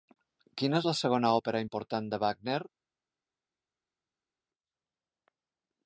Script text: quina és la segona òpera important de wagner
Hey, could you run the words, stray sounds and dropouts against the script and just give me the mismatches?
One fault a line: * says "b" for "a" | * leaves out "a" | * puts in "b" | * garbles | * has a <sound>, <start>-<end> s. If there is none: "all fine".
all fine